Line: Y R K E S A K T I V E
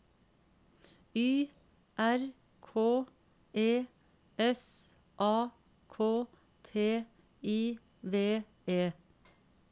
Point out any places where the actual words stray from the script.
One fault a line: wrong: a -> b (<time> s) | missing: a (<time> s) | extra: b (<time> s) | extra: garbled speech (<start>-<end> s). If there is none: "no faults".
no faults